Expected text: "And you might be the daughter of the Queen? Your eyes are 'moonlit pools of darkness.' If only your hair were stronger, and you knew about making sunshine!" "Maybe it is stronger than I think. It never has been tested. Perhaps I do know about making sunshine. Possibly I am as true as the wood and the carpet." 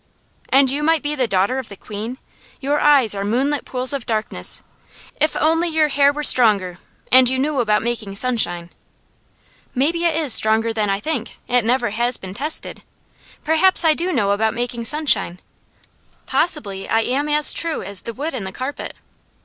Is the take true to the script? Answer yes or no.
yes